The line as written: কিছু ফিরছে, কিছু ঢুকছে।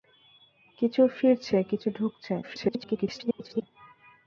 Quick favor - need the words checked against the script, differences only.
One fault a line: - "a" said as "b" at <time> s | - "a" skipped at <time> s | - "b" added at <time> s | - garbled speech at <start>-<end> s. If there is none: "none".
- garbled speech at 2.4-3.6 s